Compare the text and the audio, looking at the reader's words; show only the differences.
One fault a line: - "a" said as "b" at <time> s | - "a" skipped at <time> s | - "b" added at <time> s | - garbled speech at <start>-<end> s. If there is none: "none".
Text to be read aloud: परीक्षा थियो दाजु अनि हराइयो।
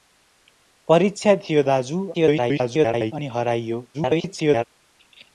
- garbled speech at 2.1-3.1 s
- garbled speech at 3.9-4.6 s